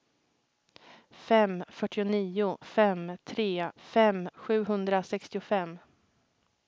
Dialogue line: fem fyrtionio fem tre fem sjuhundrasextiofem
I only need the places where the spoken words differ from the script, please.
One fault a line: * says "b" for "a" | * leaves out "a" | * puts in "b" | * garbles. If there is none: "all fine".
all fine